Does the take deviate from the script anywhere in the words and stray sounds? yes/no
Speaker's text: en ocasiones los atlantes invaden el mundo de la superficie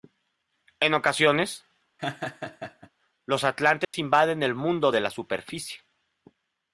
yes